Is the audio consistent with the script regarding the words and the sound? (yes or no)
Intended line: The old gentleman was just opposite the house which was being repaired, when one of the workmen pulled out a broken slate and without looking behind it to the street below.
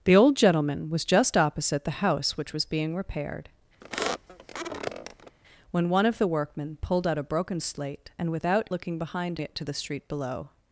no